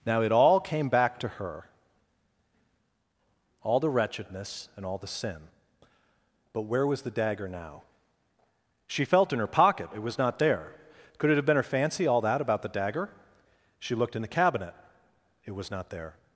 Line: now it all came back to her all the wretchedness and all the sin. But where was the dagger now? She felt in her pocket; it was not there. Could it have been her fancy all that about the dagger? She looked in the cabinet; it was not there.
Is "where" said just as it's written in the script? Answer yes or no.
yes